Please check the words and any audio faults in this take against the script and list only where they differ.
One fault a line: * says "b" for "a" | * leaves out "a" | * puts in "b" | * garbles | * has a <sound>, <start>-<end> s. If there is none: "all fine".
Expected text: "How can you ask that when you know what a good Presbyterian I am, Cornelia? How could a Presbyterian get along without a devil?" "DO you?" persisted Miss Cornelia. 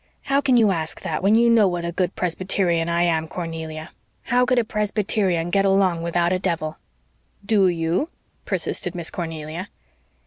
all fine